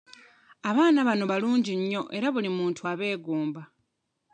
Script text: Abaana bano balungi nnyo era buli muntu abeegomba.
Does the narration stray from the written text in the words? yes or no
no